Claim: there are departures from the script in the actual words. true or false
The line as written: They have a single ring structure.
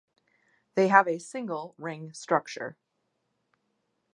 false